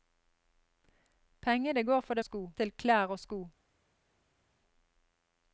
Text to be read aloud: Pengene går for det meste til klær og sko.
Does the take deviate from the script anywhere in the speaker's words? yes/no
yes